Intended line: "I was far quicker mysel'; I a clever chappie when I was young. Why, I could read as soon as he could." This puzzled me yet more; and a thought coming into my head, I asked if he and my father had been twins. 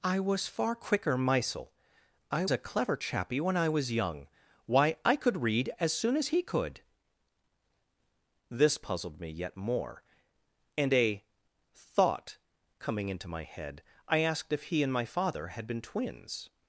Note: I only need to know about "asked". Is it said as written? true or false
true